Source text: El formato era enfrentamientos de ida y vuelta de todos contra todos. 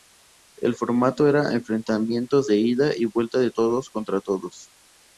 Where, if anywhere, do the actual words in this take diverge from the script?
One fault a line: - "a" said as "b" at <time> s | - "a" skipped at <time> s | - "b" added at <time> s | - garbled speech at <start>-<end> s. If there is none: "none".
none